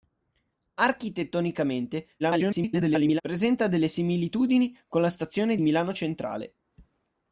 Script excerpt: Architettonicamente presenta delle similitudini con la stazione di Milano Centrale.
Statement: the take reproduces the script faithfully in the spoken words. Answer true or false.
false